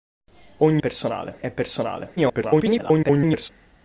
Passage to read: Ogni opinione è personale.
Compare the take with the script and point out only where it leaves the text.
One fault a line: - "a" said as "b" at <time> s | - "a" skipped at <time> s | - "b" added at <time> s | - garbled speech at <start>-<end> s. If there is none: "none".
- "opinione" said as "personale" at 0.8 s
- garbled speech at 2.2-3.5 s